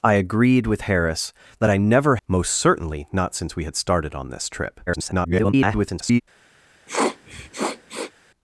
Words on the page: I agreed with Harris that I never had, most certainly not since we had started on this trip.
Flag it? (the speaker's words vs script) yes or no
yes